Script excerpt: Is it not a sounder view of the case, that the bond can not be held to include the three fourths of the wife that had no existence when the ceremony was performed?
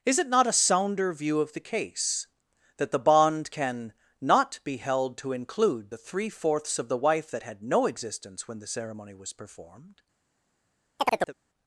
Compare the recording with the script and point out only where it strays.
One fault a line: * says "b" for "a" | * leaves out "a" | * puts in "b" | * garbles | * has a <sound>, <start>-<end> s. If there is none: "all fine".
* has a chirp, 11.0-11.3 s